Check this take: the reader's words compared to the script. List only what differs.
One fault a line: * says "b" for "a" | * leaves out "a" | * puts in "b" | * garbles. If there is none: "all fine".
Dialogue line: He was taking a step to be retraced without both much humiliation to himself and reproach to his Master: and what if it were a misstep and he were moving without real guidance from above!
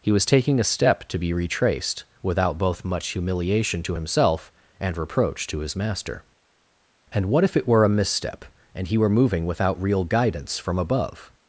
all fine